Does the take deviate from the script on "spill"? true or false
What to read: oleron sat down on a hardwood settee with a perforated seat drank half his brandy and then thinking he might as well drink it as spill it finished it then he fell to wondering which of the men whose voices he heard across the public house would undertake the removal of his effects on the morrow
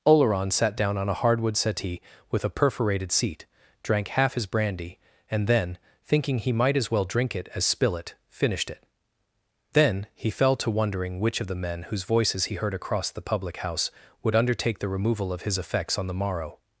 false